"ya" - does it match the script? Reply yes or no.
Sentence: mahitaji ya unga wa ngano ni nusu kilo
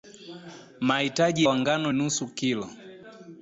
no